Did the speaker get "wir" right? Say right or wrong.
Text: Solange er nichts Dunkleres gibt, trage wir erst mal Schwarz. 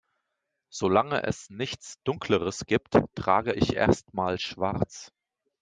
wrong